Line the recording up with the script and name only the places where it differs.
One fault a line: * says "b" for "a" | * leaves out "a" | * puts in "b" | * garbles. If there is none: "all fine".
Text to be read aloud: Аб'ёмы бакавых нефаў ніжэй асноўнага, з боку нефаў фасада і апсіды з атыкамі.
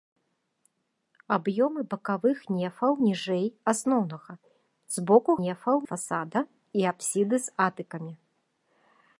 all fine